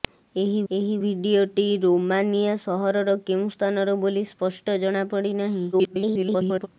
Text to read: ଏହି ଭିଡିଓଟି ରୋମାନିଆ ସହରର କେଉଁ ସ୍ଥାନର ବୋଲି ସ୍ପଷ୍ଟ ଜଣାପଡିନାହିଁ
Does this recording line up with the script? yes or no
no